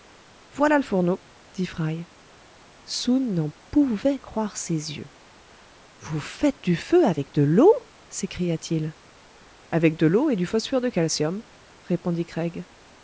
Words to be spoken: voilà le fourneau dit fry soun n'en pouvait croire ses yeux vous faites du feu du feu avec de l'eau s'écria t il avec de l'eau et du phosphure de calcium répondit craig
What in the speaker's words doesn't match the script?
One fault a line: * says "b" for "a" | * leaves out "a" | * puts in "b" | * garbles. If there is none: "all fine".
* leaves out "du feu"